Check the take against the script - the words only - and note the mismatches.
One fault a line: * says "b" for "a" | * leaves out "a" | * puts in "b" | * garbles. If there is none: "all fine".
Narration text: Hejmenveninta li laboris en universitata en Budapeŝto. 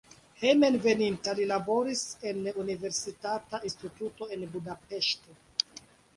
* puts in "instituto"